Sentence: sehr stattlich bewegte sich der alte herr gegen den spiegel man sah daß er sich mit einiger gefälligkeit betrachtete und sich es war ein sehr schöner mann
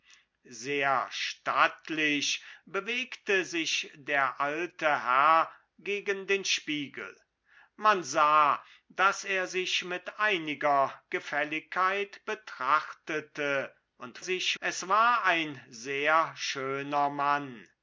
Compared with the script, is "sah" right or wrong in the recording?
right